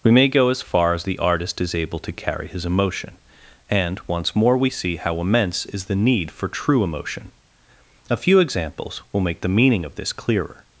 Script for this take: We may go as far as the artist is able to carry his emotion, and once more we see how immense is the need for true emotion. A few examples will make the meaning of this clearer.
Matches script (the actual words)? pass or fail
pass